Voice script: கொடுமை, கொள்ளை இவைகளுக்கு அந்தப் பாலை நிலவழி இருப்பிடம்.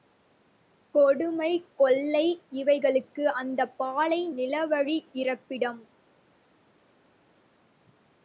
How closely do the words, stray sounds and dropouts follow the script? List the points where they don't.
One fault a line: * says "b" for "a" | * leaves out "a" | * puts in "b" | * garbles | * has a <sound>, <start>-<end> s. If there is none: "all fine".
all fine